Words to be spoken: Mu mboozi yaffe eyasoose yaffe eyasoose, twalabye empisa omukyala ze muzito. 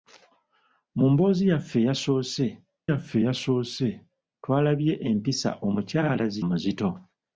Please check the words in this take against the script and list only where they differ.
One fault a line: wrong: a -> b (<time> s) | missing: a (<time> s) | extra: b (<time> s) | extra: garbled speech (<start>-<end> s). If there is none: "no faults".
no faults